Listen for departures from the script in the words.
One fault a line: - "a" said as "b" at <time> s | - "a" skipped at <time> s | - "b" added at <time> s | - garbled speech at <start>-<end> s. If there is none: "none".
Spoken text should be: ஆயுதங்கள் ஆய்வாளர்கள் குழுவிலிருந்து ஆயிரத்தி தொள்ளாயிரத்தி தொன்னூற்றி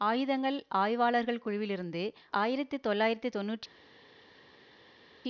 none